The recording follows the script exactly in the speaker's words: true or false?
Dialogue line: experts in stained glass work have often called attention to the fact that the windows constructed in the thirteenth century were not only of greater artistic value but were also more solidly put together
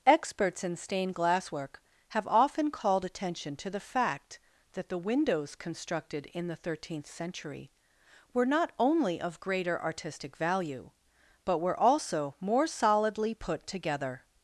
true